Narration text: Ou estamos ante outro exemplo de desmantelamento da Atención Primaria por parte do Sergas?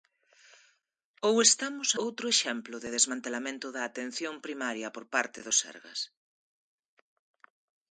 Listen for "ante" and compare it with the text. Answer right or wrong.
wrong